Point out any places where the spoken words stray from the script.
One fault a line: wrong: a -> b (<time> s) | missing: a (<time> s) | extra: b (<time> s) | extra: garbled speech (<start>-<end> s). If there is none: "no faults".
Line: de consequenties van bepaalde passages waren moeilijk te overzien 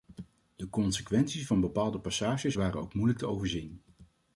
extra: ook (2.8 s)